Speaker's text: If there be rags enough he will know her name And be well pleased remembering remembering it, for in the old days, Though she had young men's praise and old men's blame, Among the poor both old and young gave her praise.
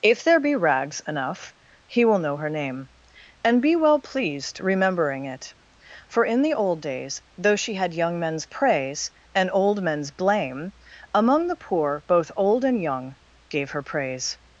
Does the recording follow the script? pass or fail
fail